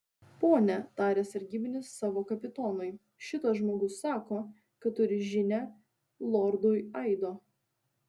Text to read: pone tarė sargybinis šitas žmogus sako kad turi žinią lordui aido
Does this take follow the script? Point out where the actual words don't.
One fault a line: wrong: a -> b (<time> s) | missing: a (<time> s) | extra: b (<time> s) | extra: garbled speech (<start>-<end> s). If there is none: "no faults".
extra: savo kapitonui (2.0 s)